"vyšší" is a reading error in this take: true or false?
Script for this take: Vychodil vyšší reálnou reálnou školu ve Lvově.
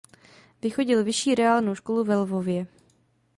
false